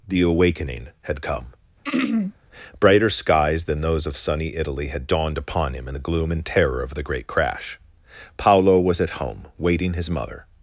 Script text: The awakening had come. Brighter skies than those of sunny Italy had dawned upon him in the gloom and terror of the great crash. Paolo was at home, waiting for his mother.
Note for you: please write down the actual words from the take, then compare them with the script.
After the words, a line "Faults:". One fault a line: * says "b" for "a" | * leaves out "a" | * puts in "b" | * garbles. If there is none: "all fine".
The awakening had come. Brighter skies than those of sunny Italy had dawned upon him in the gloom and terror of the great crash. Paolo was at home, waiting his mother.
Faults:
* leaves out "for"